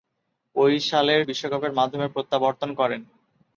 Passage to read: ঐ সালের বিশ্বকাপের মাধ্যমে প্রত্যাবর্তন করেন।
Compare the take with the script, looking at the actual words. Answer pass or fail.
pass